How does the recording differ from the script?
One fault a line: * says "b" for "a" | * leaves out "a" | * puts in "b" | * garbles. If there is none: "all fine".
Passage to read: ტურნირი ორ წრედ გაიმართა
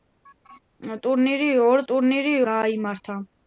* says "ტურნირი" for "წრედ"